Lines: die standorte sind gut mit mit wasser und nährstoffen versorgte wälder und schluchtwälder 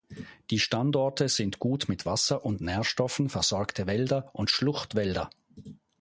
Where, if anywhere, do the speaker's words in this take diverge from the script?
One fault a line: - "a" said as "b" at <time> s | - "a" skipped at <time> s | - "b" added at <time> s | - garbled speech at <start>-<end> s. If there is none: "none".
- "mit" skipped at 2.0 s